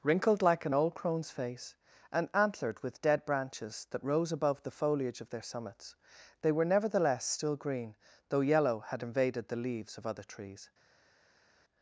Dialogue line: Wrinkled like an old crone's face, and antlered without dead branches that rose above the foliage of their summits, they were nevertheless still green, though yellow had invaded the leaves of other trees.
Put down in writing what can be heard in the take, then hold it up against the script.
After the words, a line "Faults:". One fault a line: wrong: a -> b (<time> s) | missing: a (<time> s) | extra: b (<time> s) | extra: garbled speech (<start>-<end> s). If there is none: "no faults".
Wrinkled like an old crone's face, and antlered with dead branches that rose above the foliage of their summits, they were nevertheless still green, though yellow had invaded the leaves of other trees.
Faults:
wrong: without -> with (2.8 s)